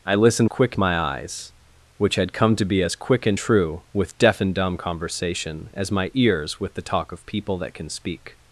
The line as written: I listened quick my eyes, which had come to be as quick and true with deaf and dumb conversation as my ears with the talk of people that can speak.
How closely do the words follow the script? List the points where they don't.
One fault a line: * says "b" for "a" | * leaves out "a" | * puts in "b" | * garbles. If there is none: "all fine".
all fine